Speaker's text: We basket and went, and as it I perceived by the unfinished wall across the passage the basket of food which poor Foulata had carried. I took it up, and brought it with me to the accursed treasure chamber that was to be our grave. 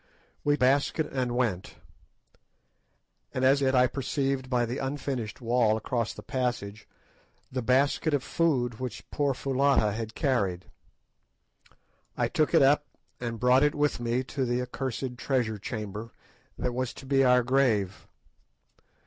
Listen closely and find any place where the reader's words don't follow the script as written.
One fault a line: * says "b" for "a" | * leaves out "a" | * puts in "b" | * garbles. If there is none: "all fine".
all fine